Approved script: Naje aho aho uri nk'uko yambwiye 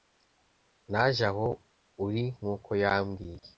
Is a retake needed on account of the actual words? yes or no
yes